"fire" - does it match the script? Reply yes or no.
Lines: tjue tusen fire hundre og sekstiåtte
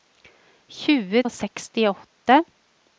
no